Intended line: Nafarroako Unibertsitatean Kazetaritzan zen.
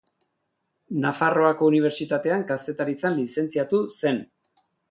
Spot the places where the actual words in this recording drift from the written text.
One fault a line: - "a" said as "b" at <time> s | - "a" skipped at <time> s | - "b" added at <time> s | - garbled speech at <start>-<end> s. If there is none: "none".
- "lizentziatu" added at 3.2 s